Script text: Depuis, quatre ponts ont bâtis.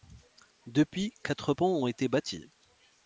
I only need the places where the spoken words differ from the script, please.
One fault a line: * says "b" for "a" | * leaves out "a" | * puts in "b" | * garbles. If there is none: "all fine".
* puts in "été"